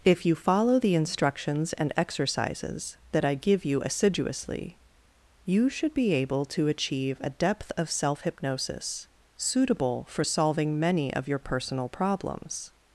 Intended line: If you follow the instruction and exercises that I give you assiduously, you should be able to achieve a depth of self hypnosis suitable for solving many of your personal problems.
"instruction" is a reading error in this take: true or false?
true